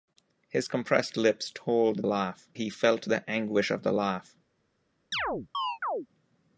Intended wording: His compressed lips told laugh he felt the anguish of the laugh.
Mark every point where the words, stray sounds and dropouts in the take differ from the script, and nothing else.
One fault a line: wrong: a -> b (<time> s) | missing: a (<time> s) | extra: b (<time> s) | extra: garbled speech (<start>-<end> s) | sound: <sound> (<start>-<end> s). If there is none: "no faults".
sound: chirp (5.1-6.1 s)